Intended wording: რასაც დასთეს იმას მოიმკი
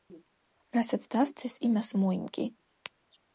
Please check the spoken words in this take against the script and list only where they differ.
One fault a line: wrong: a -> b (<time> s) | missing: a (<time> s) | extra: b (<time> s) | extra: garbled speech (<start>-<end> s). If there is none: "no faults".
no faults